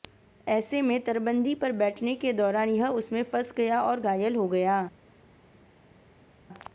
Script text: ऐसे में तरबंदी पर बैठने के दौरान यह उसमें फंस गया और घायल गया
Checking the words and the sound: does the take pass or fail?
fail